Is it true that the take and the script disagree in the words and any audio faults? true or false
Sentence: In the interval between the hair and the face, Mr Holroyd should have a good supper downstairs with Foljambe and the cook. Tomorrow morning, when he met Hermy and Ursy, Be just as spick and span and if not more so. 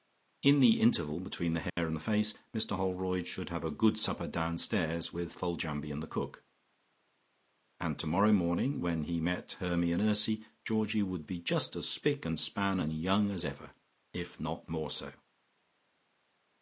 true